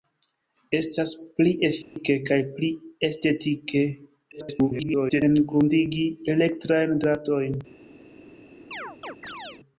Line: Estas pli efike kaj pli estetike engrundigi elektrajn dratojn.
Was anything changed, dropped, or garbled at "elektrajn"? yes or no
no